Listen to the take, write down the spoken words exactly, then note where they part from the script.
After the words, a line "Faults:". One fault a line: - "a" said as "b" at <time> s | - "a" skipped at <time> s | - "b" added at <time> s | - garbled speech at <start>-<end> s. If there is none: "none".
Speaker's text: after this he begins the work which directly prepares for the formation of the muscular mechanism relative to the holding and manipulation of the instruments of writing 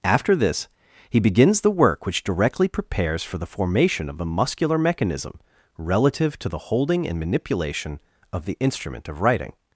after this he begins the work which directly prepares for the formation of the muscular mechanism relative to the holding and manipulation of the instrument of writing
Faults:
- "instruments" said as "instrument" at 8.6 s